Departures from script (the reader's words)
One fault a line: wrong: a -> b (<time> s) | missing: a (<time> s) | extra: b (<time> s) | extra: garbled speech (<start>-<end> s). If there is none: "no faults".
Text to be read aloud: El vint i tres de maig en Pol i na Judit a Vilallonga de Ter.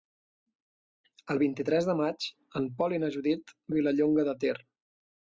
no faults